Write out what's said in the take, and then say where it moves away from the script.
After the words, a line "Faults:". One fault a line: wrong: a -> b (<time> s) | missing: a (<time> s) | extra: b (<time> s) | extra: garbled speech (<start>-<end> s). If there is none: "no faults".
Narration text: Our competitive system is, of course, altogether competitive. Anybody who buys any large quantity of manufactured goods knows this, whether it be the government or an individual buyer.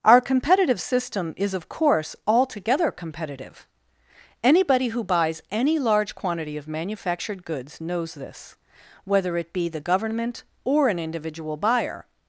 Our competitive system is, of course, altogether competitive. Anybody who buys any large quantity of manufactured goods knows this, whether it be the government or an individual buyer.
Faults:
no faults